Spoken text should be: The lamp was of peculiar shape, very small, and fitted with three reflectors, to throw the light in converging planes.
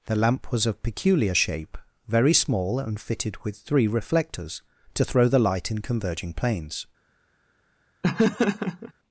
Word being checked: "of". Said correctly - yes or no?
yes